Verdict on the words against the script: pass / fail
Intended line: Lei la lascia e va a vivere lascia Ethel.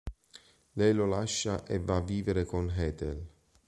fail